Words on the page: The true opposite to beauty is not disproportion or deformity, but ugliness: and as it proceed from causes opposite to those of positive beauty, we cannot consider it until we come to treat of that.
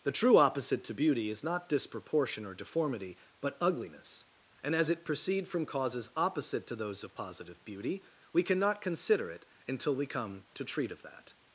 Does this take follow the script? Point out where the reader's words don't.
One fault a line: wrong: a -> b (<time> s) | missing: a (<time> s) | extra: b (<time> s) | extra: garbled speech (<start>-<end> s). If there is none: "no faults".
no faults